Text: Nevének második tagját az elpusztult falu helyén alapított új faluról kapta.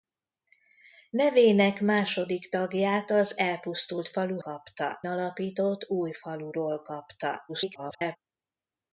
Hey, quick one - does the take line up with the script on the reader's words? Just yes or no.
no